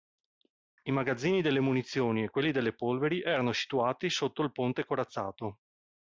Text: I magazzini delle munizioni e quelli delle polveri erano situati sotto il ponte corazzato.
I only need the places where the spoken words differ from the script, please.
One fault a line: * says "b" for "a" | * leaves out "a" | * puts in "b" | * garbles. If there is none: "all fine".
all fine